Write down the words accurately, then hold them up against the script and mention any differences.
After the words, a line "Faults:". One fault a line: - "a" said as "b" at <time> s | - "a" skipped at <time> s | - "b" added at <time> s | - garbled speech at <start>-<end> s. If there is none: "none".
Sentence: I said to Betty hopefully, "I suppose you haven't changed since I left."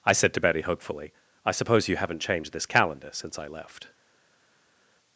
I said to Betty hopefully, "I suppose you haven't changed this calendar since I left."
Faults:
- "this calendar" added at 2.5 s